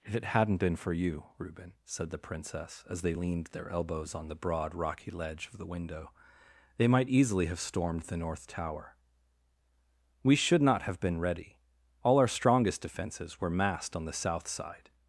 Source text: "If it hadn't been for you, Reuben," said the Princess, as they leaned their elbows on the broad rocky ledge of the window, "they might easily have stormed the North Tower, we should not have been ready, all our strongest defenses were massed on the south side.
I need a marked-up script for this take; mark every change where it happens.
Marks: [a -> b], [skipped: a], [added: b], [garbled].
"If it hadn't been for you, Reuben," said the Princess, as they leaned their elbows on the broad rocky ledge of the window, "they might easily have stormed the North Tower, we should not have been ready, all our strongest defenses were massed on the south side.